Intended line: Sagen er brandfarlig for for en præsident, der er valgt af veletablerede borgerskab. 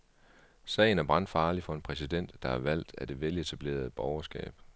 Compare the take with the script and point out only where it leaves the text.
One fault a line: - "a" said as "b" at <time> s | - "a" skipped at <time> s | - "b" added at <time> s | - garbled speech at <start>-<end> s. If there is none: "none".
- "for" skipped at 1.7 s
- "det" added at 3.1 s